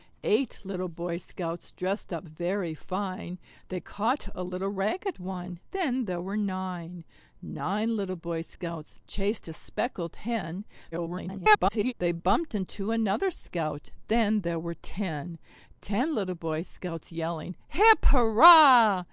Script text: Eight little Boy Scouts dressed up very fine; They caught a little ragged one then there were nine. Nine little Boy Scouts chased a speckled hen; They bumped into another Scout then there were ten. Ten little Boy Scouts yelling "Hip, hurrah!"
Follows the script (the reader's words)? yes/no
no